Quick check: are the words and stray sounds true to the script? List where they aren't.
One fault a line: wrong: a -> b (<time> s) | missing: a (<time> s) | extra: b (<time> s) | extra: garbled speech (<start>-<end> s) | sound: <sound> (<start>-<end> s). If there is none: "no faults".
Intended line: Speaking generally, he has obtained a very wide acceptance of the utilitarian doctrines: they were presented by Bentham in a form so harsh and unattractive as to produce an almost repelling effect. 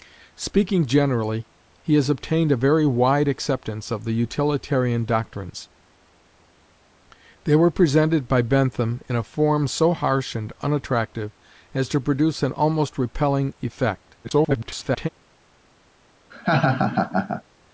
extra: garbled speech (14.2-15.1 s)
sound: laugh (16.3-17.4 s)